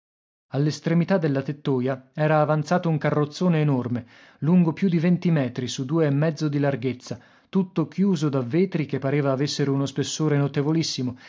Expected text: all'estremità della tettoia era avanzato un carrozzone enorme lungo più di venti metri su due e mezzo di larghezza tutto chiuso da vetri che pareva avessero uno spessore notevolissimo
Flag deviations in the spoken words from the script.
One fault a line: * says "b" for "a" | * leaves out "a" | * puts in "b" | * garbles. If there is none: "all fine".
all fine